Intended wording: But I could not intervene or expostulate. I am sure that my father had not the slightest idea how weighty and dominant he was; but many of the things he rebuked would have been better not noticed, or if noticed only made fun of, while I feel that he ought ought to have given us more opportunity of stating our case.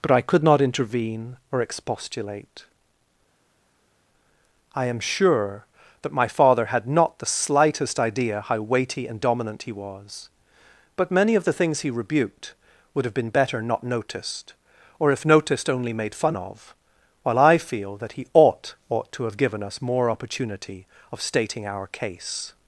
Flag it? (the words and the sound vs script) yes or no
no